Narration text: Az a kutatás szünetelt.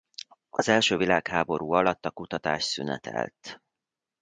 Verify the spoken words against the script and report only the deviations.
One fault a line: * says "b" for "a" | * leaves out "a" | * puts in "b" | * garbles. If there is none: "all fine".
* puts in "első világháború alatt"